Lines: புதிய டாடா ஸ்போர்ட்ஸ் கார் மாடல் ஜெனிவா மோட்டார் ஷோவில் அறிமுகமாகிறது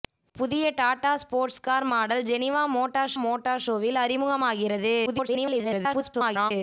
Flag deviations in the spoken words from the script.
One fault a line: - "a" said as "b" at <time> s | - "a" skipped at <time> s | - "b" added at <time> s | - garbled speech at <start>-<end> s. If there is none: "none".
- "மோட்டார்" added at 3.2 s
- garbled speech at 5.1-6.5 s